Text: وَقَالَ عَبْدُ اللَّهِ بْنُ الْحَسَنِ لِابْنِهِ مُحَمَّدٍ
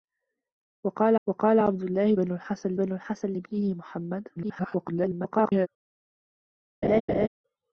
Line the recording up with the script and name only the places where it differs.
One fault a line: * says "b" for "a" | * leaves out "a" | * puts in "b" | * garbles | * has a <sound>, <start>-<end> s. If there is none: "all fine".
* puts in "وَقَالَ"
* puts in "بْنُ الْحَسَنِ"
* garbles
* has a laugh, 6.8-7.3 s